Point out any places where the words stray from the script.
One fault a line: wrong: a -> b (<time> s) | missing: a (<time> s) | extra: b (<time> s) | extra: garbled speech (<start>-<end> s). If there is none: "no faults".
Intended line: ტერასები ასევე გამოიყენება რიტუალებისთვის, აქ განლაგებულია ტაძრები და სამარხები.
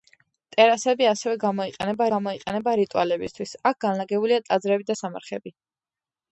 extra: გამოიყენება (2.1 s)